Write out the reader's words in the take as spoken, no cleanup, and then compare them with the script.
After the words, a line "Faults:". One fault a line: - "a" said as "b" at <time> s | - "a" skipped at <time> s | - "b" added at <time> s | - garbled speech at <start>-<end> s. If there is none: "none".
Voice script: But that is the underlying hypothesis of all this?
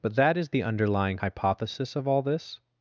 But that is the underlying hypothesis of all this?
Faults:
none